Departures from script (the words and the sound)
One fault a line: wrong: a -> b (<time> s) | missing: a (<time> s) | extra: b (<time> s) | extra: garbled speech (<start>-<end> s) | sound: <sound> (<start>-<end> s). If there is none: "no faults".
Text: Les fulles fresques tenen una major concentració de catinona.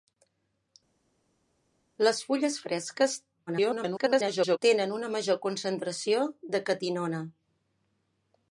extra: garbled speech (3.5-4.6 s)